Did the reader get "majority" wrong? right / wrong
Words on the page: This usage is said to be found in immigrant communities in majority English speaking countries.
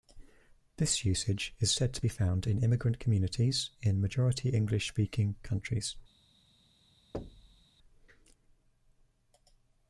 right